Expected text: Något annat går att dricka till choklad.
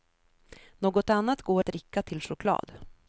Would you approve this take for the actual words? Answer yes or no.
yes